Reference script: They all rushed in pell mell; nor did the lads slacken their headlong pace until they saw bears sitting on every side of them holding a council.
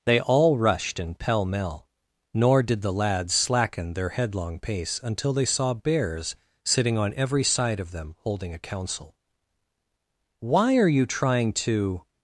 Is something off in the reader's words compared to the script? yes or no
yes